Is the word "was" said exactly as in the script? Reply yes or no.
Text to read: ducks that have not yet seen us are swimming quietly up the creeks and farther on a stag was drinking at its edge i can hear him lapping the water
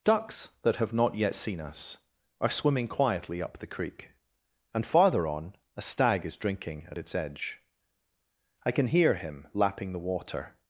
no